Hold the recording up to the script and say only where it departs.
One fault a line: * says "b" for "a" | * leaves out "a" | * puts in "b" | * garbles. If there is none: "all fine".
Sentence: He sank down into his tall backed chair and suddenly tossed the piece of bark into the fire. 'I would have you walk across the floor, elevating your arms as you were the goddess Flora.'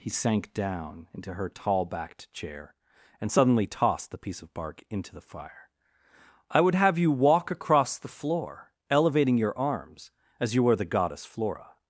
* says "her" for "his"